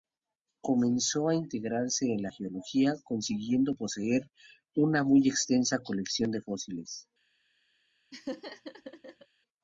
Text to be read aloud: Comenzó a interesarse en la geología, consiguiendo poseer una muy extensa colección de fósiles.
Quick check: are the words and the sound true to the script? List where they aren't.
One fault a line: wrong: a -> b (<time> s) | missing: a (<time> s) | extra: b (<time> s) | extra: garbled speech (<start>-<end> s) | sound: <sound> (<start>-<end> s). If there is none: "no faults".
sound: laugh (8.1-9.3 s)